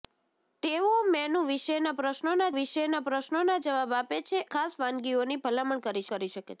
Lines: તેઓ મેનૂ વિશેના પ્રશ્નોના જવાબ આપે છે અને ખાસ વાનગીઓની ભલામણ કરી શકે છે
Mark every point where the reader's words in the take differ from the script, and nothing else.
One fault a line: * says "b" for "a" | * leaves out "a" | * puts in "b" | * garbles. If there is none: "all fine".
* puts in "વિશેના પ્રશ્નોના"
* leaves out "અને"
* puts in "કરી"